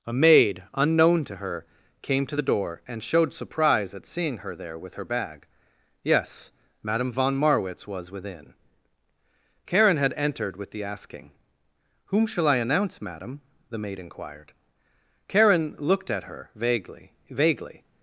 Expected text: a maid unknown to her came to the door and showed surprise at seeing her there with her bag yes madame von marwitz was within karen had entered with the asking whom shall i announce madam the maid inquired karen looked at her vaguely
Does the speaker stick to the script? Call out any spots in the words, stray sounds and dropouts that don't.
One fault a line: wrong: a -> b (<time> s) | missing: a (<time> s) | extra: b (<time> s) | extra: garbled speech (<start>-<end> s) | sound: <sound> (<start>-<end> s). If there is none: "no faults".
extra: vaguely (17.3 s)